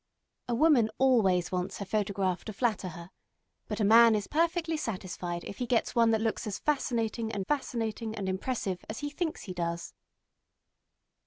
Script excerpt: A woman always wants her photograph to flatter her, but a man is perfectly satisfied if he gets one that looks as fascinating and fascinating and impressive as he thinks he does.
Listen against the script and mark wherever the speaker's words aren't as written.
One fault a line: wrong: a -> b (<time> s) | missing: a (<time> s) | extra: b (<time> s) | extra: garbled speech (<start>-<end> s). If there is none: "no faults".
no faults